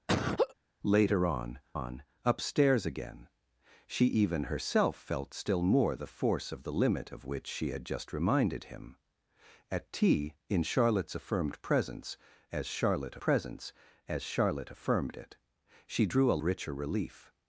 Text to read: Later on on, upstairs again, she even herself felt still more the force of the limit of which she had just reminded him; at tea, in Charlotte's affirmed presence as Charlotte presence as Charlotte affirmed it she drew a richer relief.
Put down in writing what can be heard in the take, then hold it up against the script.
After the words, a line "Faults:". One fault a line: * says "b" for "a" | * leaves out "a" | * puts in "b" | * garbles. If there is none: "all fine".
Later on on, upstairs again, she even herself felt still more the force of the limit of which she had just reminded him; at tea, in Charlotte's affirmed presence as Charlotte presence as Charlotte affirmed it she drew a richer relief.
Faults:
all fine